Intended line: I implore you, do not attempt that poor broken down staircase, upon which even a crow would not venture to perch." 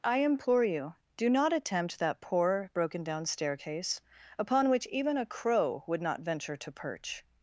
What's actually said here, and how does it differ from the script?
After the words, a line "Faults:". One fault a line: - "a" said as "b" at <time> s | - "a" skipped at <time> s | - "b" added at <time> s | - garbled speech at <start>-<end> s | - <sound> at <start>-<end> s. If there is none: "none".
I implore you, do not attempt that poor broken down staircase, upon which even a crow would not venture to perch."
Faults:
none